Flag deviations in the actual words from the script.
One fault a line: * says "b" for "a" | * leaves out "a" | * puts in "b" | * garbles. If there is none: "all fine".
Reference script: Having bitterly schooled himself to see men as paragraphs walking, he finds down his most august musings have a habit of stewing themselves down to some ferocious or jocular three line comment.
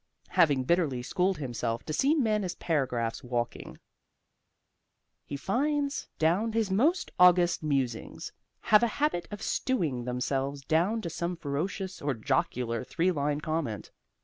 all fine